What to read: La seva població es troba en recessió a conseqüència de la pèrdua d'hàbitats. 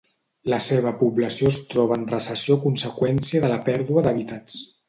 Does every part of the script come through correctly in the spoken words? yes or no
yes